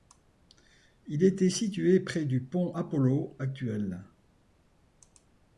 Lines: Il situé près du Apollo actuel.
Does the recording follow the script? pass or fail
fail